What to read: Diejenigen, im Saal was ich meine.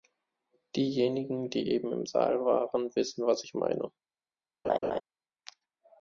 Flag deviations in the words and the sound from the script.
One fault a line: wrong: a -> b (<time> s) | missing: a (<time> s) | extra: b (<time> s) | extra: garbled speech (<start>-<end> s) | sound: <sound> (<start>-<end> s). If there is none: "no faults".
extra: die eben (1.5 s)
extra: waren wissen (2.5 s)
sound: laugh (4.6-5.0 s)